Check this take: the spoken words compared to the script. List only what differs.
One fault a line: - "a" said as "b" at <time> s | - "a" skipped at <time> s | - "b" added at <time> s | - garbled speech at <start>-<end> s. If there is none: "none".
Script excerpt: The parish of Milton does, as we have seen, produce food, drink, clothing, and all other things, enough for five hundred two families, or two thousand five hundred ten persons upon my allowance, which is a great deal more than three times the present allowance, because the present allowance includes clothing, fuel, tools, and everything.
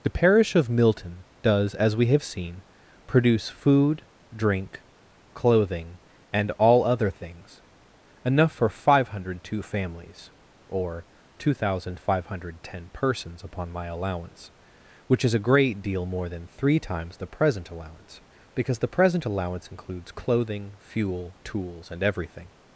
none